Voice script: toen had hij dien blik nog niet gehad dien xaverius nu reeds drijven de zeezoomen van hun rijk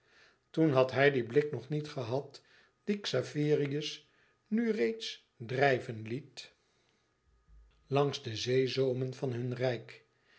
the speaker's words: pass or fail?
fail